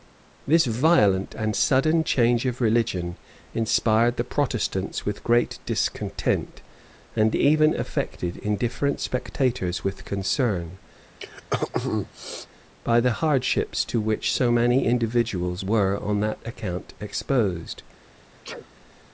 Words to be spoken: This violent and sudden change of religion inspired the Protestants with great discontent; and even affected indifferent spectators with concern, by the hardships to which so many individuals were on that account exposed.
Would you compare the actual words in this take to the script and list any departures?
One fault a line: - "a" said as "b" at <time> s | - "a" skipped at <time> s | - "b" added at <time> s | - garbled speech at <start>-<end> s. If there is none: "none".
none